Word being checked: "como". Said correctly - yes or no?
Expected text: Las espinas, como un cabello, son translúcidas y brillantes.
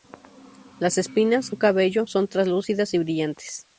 no